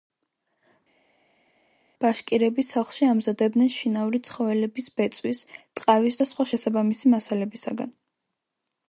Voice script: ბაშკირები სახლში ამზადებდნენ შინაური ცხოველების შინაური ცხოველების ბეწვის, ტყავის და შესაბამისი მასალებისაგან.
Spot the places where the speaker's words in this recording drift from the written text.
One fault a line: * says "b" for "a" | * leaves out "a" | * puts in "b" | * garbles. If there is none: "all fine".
* leaves out "შინაური ცხოველების"
* puts in "სხვა"